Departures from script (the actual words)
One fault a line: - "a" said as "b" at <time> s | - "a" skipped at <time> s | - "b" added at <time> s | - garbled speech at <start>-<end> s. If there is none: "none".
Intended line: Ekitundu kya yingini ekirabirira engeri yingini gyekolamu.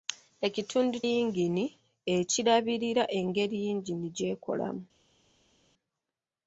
- "kya" skipped at 1.0 s